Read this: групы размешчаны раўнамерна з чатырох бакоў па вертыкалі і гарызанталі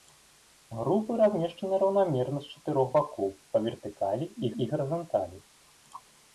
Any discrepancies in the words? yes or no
yes